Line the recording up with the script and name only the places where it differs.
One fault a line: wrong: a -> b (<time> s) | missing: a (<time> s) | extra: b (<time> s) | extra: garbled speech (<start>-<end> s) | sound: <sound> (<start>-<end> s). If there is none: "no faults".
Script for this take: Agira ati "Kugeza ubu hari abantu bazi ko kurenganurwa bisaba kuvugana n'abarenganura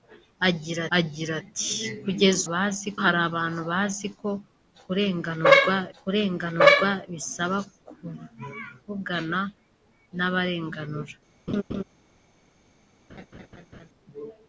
extra: agira (1.0 s)
wrong: ubu -> bazi (2.5 s)
extra: kurenganurwa (6.0 s)
sound: laugh (11.5-11.8 s)
sound: laugh (13.1-13.9 s)